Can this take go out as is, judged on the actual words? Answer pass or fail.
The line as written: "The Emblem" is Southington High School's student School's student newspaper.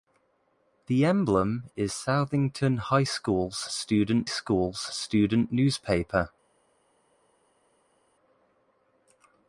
pass